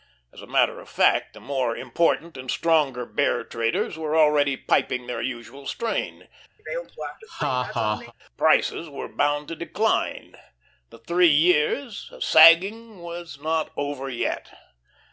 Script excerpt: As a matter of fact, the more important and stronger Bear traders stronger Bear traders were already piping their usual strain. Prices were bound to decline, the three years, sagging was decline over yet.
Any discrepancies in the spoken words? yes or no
yes